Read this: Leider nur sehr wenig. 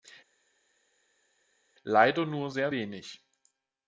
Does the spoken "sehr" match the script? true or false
true